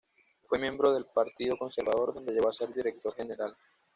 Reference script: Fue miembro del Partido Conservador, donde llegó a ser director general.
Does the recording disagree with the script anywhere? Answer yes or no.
no